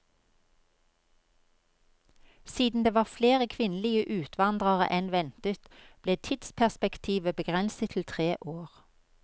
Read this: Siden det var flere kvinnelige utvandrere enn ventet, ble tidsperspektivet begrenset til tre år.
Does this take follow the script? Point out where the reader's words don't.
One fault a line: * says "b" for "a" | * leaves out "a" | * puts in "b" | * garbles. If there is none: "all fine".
all fine